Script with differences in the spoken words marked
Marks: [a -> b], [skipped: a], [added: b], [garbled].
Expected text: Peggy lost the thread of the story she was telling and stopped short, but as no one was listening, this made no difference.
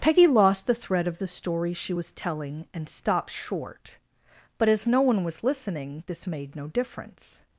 Peggy lost the thread of the story she was telling and stopped short, but as no one was listening, this made no difference.